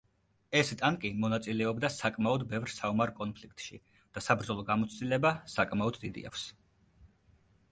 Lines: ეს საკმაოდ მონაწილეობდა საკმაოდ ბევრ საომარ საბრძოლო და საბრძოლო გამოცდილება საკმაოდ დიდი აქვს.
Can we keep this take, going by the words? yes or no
no